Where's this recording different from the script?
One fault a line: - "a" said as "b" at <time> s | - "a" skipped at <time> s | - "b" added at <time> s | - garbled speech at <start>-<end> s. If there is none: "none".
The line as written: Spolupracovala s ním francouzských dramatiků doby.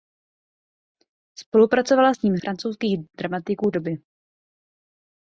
none